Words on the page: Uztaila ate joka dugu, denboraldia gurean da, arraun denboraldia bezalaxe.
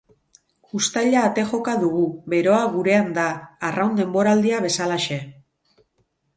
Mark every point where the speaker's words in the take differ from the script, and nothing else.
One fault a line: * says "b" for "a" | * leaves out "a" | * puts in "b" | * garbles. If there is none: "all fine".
* says "beroa" for "denboraldia"